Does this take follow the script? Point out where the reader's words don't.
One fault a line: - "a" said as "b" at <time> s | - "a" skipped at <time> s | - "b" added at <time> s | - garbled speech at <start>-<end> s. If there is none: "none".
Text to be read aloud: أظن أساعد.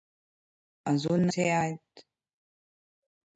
none